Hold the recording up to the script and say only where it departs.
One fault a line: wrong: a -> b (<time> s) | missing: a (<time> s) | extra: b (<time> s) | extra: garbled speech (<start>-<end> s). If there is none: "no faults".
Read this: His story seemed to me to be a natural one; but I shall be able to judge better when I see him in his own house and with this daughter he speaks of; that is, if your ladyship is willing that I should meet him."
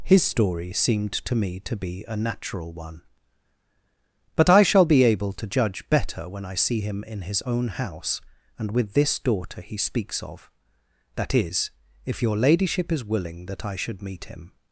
no faults